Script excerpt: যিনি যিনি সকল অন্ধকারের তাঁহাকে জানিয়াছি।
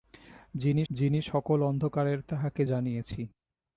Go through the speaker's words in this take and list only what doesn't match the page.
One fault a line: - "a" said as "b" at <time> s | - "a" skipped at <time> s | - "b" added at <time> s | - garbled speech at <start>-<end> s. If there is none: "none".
none